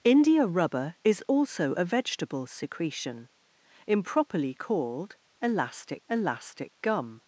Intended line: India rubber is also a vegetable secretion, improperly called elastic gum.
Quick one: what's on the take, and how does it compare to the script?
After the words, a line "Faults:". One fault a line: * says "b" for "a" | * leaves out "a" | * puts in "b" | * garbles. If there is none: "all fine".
India rubber is also a vegetable secretion, improperly called elastic elastic gum.
Faults:
* puts in "elastic"